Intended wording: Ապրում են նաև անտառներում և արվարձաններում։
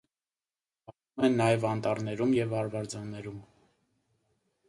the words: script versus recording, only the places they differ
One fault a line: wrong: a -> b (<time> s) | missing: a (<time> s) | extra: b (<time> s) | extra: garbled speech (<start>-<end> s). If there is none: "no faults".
no faults